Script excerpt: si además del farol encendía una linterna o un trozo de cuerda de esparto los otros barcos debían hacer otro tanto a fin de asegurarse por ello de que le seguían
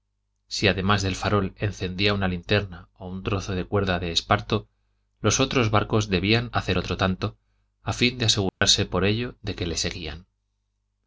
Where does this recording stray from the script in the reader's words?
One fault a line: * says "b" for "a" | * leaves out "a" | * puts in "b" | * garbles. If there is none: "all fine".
all fine